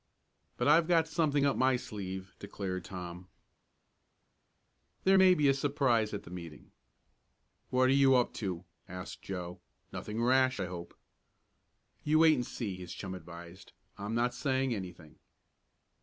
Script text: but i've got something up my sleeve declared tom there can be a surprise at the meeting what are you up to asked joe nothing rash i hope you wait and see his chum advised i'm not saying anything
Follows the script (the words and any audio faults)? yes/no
no